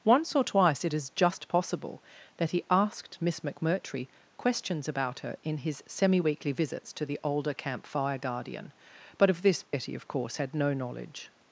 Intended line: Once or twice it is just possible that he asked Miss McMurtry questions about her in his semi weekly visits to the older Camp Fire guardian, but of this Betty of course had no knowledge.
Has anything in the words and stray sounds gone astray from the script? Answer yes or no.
yes